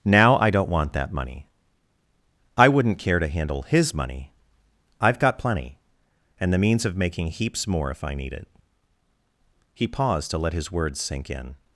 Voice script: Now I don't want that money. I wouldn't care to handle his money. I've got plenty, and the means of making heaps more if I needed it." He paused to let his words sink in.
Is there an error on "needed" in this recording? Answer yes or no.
yes